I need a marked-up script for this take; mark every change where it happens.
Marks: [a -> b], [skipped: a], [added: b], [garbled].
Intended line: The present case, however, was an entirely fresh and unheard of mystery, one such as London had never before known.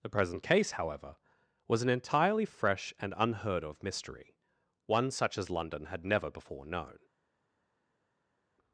The present case, however, was an entirely fresh and unheard of mystery, one such as London had never before known.